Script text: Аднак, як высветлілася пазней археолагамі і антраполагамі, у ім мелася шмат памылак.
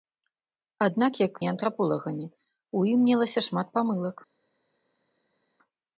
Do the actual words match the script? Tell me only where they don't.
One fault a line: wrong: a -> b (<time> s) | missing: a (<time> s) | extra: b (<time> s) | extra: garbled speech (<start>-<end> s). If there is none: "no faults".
missing: высветлілася пазней археолагамі (1.3 s)